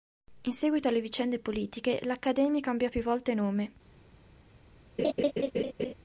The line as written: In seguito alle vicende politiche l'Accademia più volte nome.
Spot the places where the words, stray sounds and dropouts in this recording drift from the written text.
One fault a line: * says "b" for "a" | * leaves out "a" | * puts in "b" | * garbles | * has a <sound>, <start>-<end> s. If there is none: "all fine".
* puts in "cambiò"
* has a laugh, 5.0-5.9 s